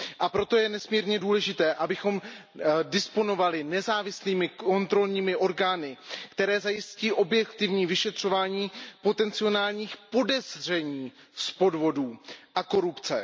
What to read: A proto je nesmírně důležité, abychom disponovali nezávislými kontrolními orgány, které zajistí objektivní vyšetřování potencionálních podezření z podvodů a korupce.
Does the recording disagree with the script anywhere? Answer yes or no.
no